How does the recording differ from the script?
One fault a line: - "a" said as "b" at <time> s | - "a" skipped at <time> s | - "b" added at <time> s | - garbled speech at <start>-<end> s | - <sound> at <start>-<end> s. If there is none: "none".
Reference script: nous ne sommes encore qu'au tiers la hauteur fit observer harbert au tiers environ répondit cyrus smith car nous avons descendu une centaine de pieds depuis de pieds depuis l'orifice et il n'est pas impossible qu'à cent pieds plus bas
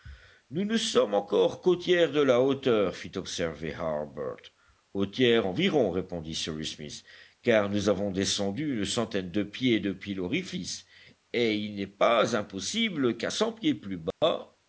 - "de" added at 2.1 s
- "de pieds depuis" skipped at 10.1 s
- dropout at 14.1-14.2 s